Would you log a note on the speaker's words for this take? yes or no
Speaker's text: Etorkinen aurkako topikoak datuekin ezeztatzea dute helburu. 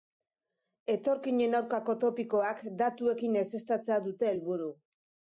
no